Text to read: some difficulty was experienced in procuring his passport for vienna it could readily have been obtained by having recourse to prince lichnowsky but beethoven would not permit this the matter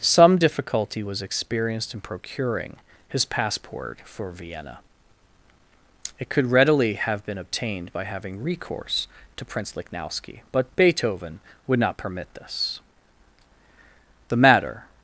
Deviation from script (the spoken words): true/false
false